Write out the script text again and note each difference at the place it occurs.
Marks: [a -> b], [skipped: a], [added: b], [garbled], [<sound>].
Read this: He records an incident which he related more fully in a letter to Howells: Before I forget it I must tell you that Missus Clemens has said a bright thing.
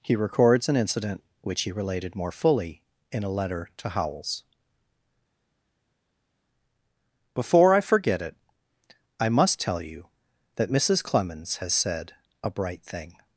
He records an incident which he related more fully in a letter to Howells: Before I forget it I must tell you that Missus Clemens has said a bright thing.